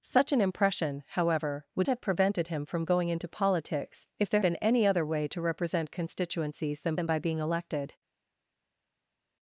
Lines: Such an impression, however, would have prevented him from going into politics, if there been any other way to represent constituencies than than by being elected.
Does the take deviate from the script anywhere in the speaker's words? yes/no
no